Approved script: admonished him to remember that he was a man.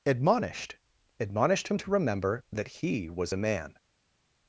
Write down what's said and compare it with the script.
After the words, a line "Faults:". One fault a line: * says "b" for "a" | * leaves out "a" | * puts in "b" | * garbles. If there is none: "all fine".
admonished admonished him to remember that he was a man.
Faults:
* puts in "admonished"